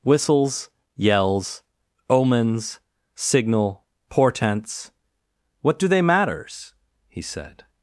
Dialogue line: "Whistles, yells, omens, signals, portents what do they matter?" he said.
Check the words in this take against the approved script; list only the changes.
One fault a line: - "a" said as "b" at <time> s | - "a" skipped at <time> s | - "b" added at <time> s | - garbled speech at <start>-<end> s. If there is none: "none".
- "signals" said as "signal" at 3.1 s
- "matter" said as "matters" at 6.0 s